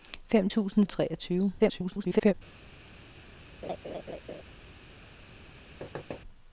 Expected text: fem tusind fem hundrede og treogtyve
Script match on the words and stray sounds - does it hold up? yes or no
no